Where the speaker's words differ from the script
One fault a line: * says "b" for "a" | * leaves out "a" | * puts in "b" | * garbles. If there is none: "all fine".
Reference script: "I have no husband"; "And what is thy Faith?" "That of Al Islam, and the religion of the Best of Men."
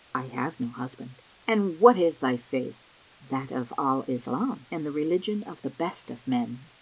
all fine